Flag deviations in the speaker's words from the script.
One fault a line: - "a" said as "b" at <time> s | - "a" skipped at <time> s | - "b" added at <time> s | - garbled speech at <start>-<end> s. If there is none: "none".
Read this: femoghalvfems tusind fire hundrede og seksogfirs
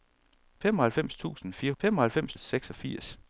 - "hundrede" said as "femoghalvfems" at 1.8 s